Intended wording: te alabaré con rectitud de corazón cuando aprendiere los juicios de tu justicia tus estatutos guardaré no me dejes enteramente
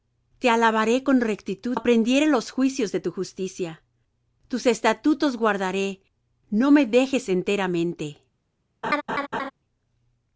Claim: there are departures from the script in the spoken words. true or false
true